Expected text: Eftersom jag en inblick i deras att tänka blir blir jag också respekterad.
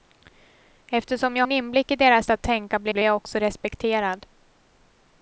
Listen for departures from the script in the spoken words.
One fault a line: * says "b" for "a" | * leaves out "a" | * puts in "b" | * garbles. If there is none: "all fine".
all fine